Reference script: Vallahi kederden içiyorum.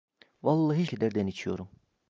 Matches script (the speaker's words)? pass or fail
pass